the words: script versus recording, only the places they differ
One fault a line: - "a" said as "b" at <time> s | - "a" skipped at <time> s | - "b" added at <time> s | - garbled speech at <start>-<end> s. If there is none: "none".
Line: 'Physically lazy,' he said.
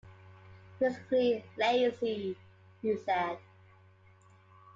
none